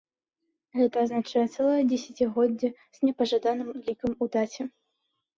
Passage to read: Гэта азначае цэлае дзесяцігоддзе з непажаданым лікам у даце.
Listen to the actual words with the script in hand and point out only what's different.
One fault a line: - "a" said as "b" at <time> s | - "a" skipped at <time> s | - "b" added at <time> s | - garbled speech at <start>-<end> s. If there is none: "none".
none